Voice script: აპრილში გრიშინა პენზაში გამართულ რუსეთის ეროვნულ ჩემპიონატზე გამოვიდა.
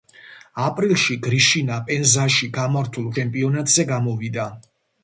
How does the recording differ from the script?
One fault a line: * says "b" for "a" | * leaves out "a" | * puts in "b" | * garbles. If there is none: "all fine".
* leaves out "რუსეთის ეროვნულ"